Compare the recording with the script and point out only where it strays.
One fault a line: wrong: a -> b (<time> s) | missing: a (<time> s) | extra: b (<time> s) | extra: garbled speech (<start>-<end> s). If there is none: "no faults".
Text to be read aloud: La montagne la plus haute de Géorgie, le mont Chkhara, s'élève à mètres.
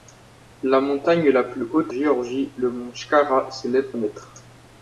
missing: de (1.9 s)
missing: à (3.9 s)